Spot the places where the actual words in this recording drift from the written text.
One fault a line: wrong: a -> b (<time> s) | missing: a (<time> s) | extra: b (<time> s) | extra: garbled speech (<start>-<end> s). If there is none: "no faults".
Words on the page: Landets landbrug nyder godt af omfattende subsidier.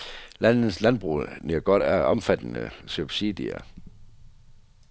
no faults